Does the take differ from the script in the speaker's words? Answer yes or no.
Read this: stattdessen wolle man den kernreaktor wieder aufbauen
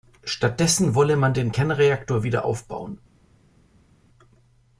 no